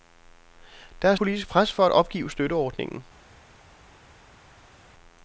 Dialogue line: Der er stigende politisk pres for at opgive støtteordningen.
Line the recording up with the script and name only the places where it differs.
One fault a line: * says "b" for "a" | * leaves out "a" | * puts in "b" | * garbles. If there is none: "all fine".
* leaves out "stigende"